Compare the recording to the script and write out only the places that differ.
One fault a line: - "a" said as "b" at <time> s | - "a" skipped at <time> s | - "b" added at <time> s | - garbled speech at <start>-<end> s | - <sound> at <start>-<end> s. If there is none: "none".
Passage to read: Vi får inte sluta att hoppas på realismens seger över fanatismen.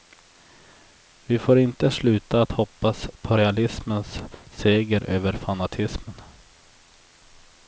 none